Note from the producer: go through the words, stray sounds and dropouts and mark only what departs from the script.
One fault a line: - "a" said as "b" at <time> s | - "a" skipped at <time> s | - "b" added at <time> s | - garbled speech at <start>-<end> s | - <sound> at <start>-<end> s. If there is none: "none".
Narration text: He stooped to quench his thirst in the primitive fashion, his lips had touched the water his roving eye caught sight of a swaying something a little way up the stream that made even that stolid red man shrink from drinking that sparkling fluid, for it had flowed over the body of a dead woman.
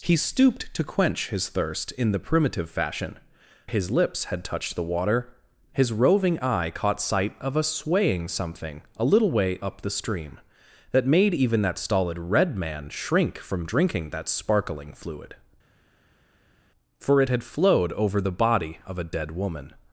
none